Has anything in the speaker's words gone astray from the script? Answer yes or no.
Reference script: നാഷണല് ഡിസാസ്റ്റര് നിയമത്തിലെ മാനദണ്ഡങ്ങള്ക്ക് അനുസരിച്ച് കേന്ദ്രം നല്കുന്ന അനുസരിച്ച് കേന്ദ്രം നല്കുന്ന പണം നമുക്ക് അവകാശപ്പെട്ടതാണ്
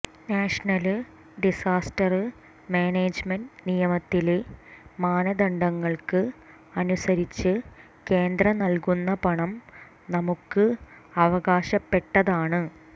yes